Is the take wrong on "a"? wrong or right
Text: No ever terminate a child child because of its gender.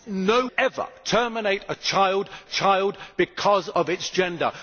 right